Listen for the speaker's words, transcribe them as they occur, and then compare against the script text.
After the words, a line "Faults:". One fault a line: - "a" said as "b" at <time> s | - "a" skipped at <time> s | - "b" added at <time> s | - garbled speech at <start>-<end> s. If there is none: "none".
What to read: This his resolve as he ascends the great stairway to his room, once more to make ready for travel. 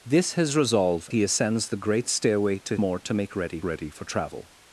This his resolve he ascends the great stairway to more to make ready ready for travel.
Faults:
- "as" skipped at 1.1 s
- "his room once" skipped at 2.8 s
- "ready" added at 3.6 s